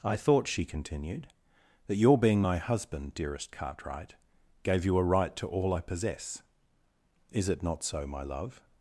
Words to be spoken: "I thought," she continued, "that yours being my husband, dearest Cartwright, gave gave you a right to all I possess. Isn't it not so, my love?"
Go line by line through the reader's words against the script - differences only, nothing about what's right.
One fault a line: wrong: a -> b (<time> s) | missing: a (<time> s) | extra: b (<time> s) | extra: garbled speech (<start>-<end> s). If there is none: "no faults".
wrong: yours -> your (1.9 s)
missing: gave (4.8 s)
wrong: Isn't -> Is (7.3 s)